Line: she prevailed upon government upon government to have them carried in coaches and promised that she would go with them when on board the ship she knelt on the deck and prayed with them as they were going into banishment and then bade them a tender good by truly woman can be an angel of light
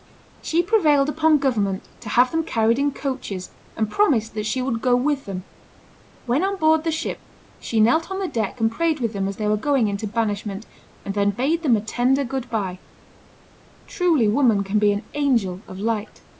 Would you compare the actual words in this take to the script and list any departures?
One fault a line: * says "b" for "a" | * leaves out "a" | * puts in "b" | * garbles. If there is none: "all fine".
* leaves out "upon government"